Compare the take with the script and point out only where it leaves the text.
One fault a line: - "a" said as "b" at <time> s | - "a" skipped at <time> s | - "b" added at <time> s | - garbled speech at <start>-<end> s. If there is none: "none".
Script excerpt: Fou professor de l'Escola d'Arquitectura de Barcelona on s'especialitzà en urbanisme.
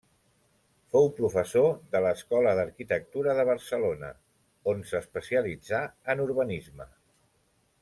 none